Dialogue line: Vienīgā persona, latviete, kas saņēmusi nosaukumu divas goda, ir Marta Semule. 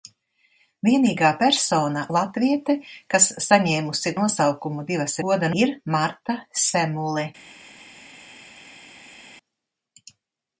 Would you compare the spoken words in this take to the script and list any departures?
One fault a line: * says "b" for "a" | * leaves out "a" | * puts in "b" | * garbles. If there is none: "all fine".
all fine